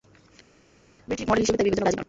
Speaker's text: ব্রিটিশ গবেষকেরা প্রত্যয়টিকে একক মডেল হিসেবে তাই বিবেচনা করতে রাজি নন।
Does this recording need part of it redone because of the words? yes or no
yes